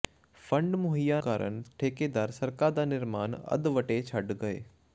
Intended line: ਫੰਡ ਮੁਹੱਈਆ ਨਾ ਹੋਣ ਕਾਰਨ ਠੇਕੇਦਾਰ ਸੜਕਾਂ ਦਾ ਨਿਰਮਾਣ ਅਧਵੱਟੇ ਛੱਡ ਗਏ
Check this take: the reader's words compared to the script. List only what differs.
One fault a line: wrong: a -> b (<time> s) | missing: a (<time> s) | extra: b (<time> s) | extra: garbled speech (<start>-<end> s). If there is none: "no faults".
missing: ਨਾ ਹੋਣ (1.2 s)